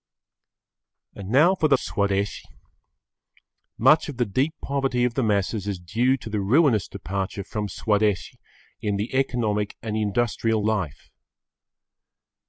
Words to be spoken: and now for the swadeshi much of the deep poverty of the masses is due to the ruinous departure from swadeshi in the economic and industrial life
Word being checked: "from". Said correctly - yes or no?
yes